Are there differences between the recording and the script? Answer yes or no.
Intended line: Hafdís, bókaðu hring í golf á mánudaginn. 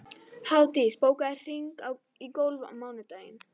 no